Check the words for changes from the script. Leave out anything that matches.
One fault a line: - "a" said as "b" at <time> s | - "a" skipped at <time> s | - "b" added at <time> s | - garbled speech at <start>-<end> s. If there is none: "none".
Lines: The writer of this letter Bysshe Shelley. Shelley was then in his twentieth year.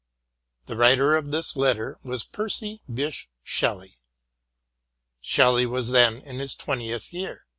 - "was Percy" added at 2.0 s